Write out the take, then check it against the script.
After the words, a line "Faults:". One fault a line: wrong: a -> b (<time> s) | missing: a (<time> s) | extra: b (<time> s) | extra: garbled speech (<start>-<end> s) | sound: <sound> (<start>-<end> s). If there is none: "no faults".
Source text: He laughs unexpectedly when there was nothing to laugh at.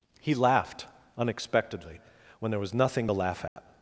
He laughed unexpectedly when there was nothing to laugh at.
Faults:
wrong: laughs -> laughed (0.3 s)
sound: dropout (3.5-3.6 s)